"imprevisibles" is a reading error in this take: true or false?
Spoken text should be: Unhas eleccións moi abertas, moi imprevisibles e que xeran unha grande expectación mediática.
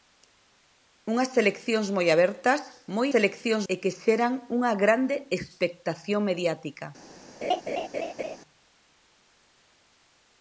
true